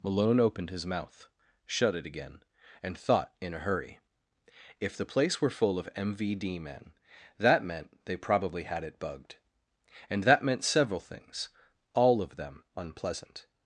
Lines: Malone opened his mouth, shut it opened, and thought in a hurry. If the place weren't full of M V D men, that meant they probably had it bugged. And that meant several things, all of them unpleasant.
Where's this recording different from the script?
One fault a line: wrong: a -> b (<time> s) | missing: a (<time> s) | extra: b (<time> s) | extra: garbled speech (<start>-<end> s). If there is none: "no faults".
wrong: opened -> again (2.1 s)
wrong: weren't -> were (5.4 s)